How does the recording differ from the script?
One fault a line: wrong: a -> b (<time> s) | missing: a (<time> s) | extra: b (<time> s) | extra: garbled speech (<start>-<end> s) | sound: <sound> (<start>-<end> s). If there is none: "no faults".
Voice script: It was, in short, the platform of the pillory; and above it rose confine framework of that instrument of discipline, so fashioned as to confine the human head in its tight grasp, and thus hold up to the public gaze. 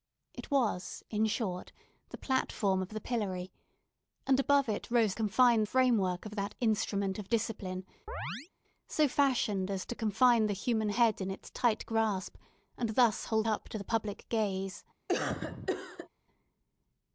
sound: chirp (8.1-8.5 s)
sound: cough (15.1-16.1 s)